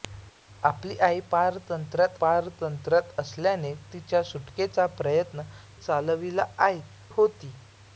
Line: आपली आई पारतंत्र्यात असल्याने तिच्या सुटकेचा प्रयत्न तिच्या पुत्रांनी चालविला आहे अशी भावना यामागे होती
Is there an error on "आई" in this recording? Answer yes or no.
no